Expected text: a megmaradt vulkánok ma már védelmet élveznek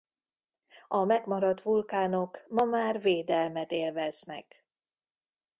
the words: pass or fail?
pass